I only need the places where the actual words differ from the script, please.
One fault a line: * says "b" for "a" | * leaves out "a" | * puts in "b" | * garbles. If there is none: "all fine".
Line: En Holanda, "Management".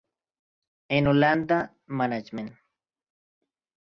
all fine